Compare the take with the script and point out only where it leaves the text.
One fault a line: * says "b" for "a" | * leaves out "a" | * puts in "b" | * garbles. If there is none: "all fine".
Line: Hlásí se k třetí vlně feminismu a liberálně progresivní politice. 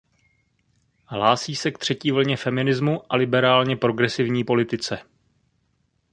all fine